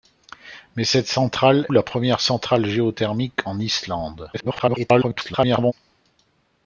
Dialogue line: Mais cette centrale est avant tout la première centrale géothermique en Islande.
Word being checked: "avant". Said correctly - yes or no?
no